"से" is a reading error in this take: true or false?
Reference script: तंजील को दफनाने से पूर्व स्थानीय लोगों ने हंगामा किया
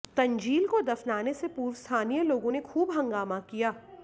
false